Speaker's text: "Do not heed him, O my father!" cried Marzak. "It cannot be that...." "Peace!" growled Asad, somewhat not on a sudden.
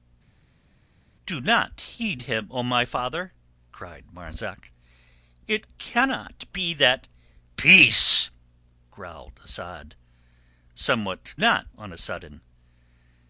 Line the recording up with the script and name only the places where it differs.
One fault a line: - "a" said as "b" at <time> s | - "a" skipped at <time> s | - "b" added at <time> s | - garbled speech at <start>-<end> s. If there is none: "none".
none